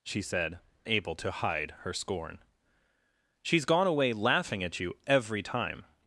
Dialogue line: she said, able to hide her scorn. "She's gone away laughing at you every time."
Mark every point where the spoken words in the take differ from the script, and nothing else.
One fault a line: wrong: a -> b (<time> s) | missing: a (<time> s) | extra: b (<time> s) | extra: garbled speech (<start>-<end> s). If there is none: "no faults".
no faults